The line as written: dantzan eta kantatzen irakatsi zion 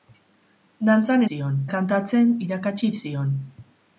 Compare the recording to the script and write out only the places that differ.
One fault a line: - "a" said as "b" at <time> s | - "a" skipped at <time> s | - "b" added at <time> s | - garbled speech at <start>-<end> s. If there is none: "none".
- "eta" said as "zion" at 1.3 s